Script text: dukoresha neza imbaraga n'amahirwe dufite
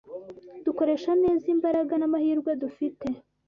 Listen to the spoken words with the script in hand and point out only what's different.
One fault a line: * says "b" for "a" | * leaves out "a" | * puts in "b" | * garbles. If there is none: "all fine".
all fine